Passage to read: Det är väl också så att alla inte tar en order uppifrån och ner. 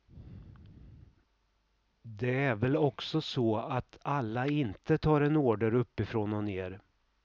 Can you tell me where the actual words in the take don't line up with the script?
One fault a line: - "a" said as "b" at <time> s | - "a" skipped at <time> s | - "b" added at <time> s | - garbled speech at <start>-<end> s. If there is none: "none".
none